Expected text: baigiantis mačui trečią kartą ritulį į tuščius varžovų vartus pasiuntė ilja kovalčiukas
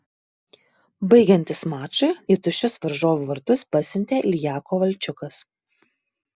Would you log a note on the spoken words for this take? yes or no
yes